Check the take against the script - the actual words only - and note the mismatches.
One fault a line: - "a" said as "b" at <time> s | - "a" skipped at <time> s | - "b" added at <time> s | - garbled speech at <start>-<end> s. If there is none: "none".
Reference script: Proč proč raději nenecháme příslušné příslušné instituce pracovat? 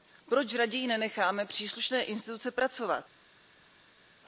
- "proč" skipped at 0.5 s
- "příslušné" skipped at 2.0 s